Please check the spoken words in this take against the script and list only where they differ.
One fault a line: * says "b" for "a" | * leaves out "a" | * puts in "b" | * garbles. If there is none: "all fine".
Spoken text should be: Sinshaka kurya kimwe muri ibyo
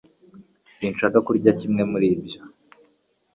all fine